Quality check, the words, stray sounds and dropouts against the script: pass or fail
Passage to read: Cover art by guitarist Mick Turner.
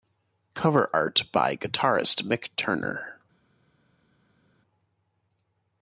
pass